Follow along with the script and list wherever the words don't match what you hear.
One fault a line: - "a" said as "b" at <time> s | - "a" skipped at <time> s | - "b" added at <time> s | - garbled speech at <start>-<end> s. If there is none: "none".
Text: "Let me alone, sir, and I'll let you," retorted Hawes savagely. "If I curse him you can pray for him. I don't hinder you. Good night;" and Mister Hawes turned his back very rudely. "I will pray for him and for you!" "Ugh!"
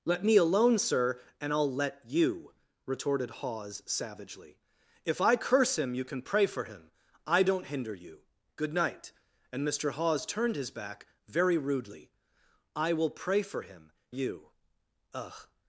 - "and for" skipped at 13.9 s